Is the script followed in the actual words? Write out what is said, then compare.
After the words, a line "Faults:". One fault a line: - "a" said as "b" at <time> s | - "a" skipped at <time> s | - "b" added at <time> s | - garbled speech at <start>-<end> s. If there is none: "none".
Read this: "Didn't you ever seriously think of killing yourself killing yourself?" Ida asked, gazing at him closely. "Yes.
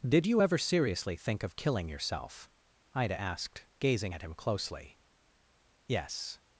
"Did you ever seriously think of killing yourself?" Ida asked, gazing at him closely. "Yes.
Faults:
- "Didn't" said as "Did" at 0.1 s
- "killing yourself" skipped at 2.5 s